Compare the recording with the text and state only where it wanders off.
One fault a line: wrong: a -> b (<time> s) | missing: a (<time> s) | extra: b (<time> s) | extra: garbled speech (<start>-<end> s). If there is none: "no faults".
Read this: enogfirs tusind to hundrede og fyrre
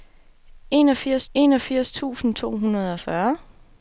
extra: enogfirs (1.3 s)